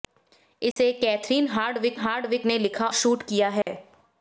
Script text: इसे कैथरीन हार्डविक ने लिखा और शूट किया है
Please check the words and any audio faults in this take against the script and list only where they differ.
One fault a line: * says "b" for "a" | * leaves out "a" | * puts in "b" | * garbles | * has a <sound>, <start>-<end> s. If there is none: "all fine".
* has a dropout, 0.7-0.8 s
* puts in "हार्डविक"
* leaves out "और"
* has a dropout, 3.6-3.7 s